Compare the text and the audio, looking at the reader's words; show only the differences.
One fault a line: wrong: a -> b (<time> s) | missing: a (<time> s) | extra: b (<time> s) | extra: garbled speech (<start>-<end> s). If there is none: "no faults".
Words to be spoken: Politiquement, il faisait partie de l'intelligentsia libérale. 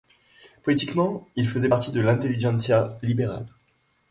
no faults